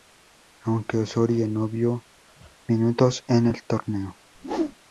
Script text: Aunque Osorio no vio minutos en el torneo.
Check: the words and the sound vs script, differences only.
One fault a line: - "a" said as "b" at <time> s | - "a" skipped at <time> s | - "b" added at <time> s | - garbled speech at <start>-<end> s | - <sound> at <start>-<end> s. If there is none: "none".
- whoosh at 4.3-4.8 s